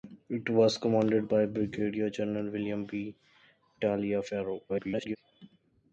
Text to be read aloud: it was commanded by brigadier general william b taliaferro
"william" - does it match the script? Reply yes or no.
yes